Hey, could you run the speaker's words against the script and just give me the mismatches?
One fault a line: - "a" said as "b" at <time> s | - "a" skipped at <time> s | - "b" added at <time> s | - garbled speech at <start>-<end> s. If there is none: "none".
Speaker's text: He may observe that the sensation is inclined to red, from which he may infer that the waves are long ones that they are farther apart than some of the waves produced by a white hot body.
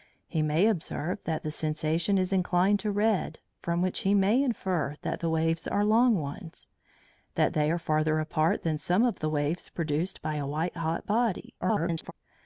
- garbled speech at 11.6-12.1 s